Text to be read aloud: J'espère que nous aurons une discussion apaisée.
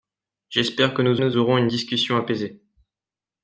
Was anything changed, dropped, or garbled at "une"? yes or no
no